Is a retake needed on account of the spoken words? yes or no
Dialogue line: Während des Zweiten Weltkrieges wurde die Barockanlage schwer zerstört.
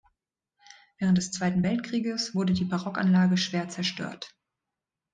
no